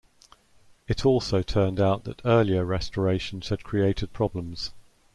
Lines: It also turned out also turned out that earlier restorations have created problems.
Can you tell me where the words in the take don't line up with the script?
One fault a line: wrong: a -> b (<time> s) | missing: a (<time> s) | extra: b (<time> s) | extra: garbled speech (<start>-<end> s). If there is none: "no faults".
missing: also turned out (2.0 s)
wrong: have -> had (3.5 s)